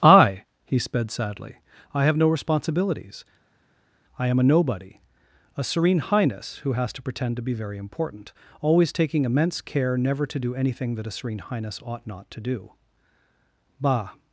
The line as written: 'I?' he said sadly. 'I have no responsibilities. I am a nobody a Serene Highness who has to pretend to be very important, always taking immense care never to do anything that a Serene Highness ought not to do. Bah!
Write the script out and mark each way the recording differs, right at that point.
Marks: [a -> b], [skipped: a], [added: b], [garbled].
'I?' he [said -> sped] sadly. 'I have no responsibilities. I am a nobody a Serene Highness who has to pretend to be very important, always taking immense care never to do anything that a Serene Highness ought not to do. Bah!